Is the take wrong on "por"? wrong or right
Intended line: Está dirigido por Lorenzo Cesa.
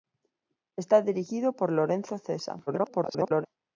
right